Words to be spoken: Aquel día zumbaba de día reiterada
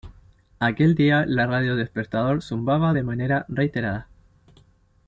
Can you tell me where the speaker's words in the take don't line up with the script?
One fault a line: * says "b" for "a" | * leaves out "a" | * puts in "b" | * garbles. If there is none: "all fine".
* puts in "la radio despertador"
* says "manera" for "día"